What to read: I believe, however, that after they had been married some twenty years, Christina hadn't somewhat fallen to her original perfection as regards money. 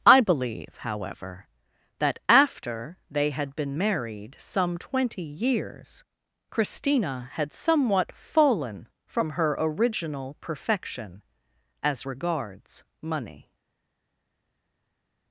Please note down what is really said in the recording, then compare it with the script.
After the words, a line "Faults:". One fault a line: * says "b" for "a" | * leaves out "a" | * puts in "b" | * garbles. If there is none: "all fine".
I believe, however, that after they had been married some twenty years, Christina had somewhat fallen from her original perfection as regards money.
Faults:
* says "had" for "hadn't"
* says "from" for "to"